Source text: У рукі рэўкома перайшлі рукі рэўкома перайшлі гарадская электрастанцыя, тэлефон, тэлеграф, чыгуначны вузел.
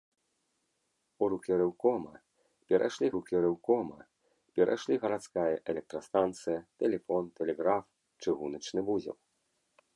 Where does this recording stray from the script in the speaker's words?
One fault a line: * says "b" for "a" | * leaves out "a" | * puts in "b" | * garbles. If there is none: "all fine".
all fine